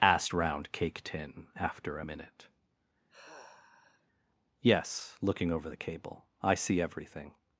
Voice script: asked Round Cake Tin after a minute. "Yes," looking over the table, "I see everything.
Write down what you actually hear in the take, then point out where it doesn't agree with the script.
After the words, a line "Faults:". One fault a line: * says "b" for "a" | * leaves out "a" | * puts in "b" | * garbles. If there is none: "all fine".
asked Round Cake Tin after a minute. "Yes," looking over the cable, "I see everything.
Faults:
* says "cable" for "table"